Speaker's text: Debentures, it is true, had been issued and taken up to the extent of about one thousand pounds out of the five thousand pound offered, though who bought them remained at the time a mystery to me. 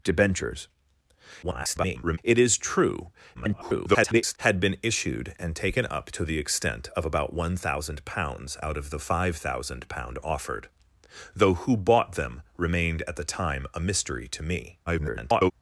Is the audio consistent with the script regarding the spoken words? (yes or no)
no